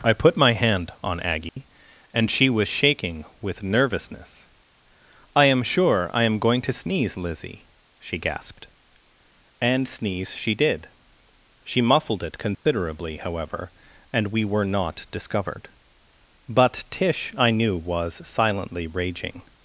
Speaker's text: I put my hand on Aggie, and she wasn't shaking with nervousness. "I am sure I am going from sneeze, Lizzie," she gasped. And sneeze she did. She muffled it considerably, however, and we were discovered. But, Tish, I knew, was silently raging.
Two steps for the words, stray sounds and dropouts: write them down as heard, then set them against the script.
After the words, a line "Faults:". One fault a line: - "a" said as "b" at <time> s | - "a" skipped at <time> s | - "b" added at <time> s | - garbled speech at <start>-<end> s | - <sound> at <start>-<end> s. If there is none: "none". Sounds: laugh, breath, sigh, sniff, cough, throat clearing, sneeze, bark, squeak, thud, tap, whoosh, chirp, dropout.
I put my hand on Aggie, and she was shaking with nervousness. "I am sure I am going to sneeze, Lizzie," she gasped. And sneeze she did. She muffled it considerably, however, and we were not discovered. But, Tish, I knew, was silently raging.
Faults:
- dropout at 1.5-1.6 s
- "wasn't" said as "was" at 2.5 s
- "from" said as "to" at 6.6 s
- dropout at 12.6-12.7 s
- "not" added at 14.7 s